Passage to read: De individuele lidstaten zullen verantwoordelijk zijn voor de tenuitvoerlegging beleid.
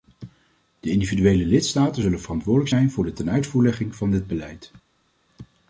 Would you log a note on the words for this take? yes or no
yes